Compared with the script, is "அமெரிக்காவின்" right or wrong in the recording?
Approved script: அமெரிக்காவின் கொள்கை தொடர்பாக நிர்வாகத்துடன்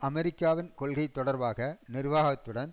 right